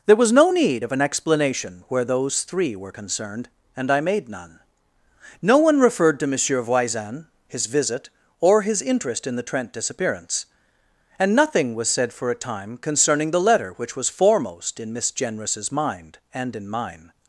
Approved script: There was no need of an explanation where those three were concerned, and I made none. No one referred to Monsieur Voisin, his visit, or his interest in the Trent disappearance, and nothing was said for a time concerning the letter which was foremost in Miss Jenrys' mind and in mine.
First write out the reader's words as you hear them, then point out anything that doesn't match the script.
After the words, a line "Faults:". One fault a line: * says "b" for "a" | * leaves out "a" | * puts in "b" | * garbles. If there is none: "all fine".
There was no need of an explanation where those three were concerned, and I made none. No one referred to Monsieur Voisin, his visit, or his interest in the Trent disappearance, and nothing was said for a time concerning the letter which was foremost in Miss Jenrys' mind and in mine.
Faults:
all fine